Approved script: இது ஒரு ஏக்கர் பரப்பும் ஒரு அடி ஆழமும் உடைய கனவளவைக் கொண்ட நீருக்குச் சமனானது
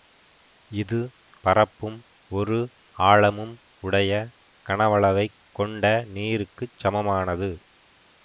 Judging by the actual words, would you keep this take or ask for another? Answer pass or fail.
fail